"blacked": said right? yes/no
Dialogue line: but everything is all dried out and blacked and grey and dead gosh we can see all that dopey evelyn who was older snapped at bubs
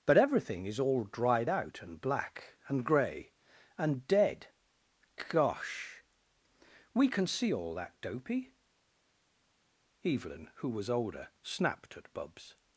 no